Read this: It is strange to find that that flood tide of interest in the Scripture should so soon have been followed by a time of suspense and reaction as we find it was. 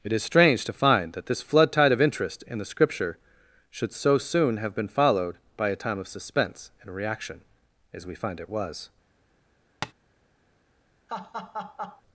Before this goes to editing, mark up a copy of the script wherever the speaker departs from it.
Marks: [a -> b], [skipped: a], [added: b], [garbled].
It is strange to find that [that -> this] flood tide of interest in the Scripture should so soon have been followed by a time of suspense and reaction as we find it was.